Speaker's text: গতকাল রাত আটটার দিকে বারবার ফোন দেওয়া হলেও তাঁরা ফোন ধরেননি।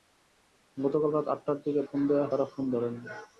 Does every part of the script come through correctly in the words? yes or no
no